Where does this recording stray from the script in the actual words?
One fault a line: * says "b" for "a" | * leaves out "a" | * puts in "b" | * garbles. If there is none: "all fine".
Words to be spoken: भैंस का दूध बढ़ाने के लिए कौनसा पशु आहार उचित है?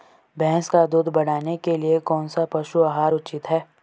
all fine